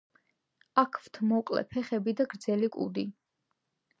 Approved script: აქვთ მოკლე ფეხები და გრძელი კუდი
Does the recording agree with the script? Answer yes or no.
yes